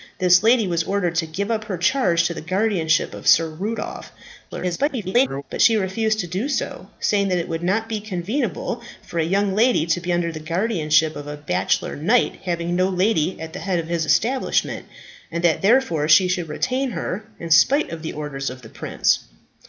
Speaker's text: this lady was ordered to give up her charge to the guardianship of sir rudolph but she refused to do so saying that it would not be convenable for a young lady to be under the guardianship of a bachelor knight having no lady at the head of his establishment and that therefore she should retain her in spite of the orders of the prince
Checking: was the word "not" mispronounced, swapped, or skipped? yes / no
no